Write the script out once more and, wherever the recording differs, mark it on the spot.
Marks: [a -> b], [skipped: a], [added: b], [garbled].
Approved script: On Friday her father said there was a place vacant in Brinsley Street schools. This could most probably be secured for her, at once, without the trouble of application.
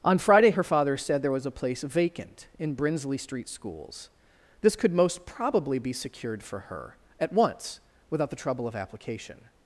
On Friday her father said there was a place vacant in Brinsley Street schools. This could most probably be secured for her, at once, without the trouble of application.